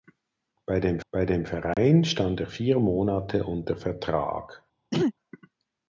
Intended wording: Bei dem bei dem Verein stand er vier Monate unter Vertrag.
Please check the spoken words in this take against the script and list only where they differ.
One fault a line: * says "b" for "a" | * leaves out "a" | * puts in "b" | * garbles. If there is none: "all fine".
all fine